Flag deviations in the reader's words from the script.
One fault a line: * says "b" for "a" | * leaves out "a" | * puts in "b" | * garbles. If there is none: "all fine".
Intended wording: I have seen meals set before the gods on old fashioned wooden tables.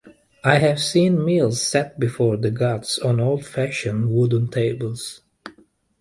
all fine